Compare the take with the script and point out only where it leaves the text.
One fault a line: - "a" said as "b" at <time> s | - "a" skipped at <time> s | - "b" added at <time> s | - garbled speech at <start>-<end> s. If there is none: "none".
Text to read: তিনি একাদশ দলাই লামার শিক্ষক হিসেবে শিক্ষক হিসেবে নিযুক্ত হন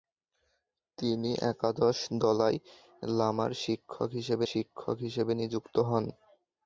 none